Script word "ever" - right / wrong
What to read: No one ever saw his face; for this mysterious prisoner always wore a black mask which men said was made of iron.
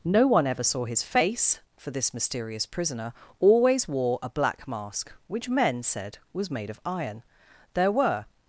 right